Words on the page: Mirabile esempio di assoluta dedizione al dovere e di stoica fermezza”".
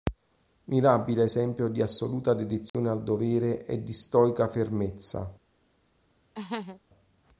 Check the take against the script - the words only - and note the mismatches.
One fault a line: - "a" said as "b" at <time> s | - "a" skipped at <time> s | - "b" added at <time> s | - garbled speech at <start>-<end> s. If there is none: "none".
none